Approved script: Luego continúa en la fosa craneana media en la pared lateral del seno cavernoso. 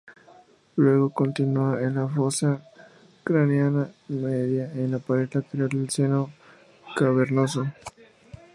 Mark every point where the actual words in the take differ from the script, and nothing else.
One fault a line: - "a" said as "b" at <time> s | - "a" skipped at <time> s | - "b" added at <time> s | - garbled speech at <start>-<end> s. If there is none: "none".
none